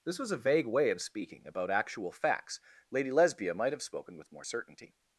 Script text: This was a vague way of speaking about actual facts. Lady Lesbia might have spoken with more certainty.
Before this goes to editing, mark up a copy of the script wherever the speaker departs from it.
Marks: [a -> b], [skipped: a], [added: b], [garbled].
This was a vague way of speaking about actual facts. Lady Lesbia might have spoken with more certainty.